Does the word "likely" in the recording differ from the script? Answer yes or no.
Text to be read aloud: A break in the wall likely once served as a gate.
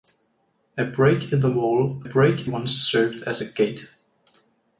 yes